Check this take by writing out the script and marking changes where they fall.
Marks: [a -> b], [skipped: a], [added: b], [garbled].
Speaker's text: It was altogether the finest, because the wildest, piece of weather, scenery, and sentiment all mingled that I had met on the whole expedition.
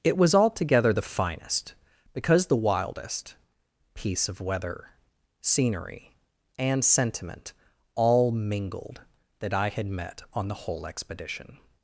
It was altogether the finest, because the wildest, piece of weather, scenery, and sentiment all mingled that I had met on the whole expedition.